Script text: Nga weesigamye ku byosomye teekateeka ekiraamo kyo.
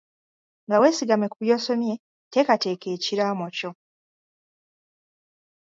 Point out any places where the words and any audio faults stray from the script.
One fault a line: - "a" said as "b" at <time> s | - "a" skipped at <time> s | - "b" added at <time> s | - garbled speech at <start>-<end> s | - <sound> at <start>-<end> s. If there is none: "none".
none